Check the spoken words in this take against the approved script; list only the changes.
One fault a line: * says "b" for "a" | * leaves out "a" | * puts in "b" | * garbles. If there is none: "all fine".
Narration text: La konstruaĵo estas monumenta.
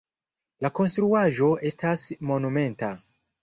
all fine